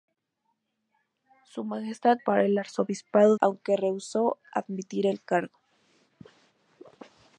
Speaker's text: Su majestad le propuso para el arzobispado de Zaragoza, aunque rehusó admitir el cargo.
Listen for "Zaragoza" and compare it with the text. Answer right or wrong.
wrong